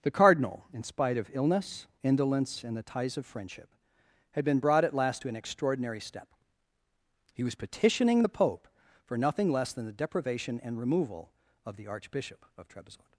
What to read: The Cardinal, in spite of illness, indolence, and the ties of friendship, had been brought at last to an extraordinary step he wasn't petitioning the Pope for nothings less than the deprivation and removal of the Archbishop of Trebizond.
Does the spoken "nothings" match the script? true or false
false